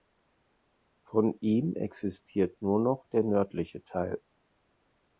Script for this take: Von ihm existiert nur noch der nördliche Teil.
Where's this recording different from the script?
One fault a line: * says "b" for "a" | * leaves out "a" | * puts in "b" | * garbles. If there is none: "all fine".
all fine